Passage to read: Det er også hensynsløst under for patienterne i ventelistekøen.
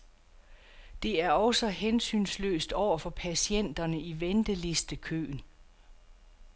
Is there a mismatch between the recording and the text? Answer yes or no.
yes